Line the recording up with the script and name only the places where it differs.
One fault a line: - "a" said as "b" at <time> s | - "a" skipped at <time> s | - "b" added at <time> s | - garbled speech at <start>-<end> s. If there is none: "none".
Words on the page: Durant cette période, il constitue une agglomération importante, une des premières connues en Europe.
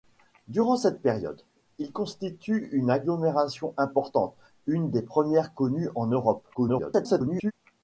- garbled speech at 6.5-7.5 s